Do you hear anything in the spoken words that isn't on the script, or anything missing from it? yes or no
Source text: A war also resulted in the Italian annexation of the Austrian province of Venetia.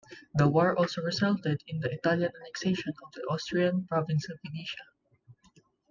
yes